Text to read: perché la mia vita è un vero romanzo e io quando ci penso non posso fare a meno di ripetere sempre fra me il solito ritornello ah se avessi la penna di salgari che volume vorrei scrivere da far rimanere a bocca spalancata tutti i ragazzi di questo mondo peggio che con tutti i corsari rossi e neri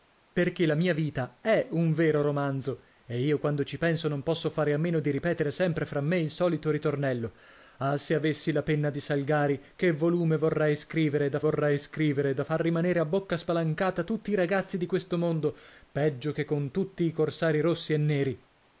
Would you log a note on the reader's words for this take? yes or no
yes